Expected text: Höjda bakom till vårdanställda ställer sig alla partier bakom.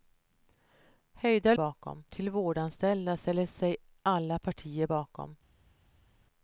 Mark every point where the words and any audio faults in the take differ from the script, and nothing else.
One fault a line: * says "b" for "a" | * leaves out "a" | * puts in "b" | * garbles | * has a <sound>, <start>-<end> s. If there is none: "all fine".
all fine